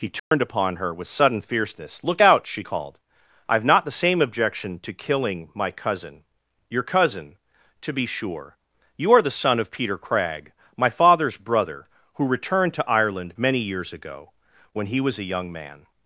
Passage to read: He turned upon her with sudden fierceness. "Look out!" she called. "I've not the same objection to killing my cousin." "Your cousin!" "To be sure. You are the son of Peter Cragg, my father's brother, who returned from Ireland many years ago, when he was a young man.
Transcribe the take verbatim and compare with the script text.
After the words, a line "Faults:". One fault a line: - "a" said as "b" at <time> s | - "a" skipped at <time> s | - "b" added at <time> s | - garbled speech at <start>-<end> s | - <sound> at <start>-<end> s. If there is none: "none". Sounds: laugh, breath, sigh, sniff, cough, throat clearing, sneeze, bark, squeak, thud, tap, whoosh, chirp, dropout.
He turned upon her with sudden fierceness. "Look out!" she called. "I've not the same objection to killing my cousin." "Your cousin!" "To be sure. You are the son of Peter Cragg, my father's brother, who returned to Ireland many years ago, when he was a young man.
Faults:
- dropout at 0.2-0.3 s
- "from" said as "to" at 12.7 s